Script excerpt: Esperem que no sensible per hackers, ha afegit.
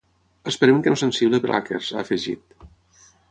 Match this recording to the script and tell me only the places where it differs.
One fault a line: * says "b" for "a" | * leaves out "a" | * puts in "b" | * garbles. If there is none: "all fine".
all fine